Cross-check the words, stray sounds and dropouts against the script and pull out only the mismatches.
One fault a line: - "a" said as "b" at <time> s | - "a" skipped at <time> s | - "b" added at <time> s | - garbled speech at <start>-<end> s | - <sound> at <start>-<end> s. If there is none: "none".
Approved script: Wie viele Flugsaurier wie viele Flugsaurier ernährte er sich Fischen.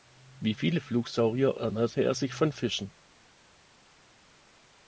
- "wie viele Flugsaurier" skipped at 1.6 s
- "von" added at 2.3 s